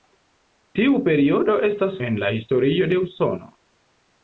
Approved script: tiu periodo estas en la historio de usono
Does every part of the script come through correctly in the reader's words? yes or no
yes